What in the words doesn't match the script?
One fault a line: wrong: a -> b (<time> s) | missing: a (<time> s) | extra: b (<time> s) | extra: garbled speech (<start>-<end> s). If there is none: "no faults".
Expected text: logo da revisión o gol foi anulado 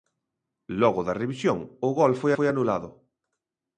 extra: foi (2.4 s)